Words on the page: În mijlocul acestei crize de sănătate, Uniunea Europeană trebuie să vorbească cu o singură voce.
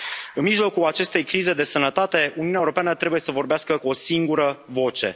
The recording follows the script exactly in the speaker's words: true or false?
true